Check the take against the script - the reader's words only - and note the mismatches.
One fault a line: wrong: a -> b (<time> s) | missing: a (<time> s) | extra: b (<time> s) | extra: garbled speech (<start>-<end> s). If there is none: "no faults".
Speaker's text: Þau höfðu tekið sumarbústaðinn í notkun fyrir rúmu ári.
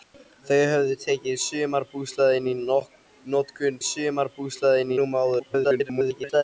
wrong: fyrir -> sumarbústaðinn (3.9 s)
extra: garbled speech (5.4-6.4 s)